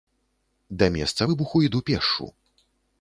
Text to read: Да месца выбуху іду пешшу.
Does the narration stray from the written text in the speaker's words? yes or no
no